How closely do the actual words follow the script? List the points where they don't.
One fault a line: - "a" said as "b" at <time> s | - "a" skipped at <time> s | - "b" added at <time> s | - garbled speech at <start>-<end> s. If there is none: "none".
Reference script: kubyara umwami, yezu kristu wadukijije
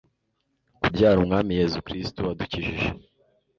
none